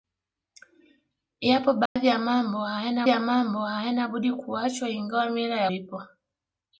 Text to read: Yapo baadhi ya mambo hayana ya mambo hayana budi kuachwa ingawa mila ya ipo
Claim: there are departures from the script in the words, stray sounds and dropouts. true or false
true